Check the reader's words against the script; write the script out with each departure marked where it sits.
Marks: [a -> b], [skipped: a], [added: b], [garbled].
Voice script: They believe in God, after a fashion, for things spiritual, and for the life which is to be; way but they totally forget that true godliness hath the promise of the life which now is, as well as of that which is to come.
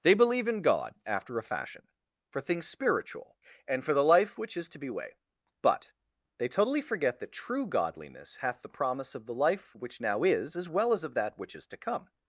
They believe in God, after a fashion, for things spiritual, and for the life which is to be; way but they totally forget that true godliness hath the promise of the life which now is, as well as of that which is to come.